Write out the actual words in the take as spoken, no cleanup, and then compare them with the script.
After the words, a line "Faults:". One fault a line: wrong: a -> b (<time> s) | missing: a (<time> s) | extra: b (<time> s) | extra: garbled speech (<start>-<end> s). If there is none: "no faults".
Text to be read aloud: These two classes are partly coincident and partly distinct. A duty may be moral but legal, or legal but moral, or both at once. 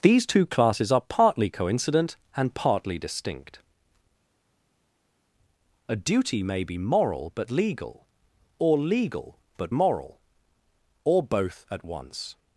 These two classes are partly coincident and partly distinct. A duty may be moral but legal, or legal but moral, or both at once.
Faults:
no faults